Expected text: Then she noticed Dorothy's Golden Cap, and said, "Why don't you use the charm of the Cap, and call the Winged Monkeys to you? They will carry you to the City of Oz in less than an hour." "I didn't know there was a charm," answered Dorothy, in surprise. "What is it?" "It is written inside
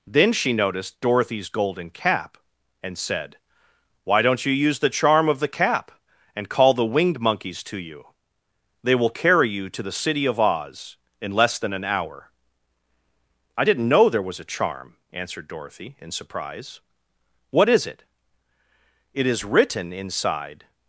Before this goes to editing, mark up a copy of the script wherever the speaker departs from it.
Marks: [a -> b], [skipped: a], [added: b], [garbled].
Then she noticed Dorothy's Golden Cap, and said, "Why don't you use the charm of the Cap, and call the Winged Monkeys to you? They will carry you to the City of Oz in less than an hour." "I didn't know there was a charm," answered Dorothy, in surprise. "What is it?" "It is written inside